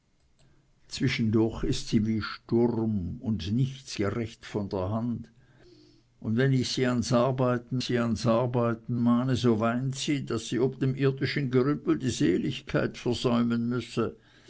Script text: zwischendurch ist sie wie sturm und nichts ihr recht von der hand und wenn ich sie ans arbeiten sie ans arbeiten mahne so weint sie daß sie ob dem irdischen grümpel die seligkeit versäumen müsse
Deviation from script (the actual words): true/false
false